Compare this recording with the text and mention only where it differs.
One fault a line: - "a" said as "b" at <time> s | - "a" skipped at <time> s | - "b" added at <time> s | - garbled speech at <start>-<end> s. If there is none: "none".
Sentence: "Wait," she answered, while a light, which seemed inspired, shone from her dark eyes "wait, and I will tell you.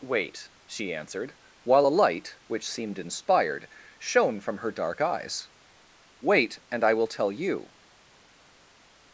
none